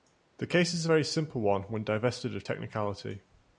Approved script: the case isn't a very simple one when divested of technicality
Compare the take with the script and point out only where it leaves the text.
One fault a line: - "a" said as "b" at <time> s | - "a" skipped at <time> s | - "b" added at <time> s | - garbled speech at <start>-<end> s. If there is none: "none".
- "isn't" said as "is" at 0.7 s